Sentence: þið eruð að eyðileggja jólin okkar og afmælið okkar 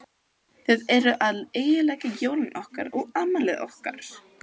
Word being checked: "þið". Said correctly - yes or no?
yes